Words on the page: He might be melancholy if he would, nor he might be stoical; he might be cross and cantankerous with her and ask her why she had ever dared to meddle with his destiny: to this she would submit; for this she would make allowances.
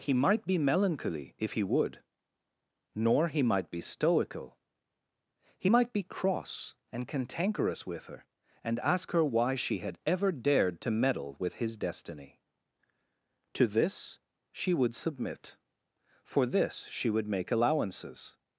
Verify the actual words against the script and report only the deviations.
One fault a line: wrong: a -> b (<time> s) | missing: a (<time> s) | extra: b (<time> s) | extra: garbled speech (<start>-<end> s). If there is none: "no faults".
no faults